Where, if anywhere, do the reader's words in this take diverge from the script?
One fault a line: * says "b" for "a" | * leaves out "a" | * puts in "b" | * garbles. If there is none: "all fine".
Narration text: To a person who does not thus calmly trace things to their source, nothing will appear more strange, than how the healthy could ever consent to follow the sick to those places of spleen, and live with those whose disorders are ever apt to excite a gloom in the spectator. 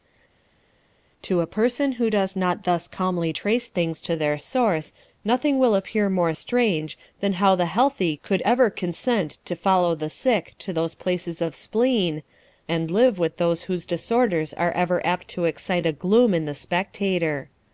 all fine